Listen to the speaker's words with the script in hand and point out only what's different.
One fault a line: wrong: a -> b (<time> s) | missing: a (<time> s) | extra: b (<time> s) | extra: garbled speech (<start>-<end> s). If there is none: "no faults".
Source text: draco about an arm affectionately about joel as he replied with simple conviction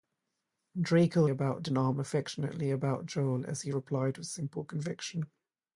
no faults